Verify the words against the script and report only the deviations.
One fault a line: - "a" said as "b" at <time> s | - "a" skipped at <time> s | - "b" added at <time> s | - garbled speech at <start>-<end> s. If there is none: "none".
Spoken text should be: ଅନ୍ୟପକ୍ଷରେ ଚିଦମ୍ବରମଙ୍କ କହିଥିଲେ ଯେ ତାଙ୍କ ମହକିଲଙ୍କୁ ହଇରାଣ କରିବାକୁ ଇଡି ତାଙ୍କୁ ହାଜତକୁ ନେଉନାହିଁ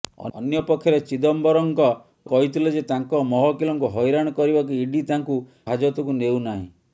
none